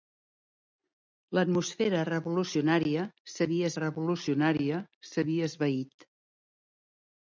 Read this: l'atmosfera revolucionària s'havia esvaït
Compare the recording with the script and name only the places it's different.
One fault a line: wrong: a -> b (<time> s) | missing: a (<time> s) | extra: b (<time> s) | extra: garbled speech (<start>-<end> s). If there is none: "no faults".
extra: revolucionària s'havia (3.8 s)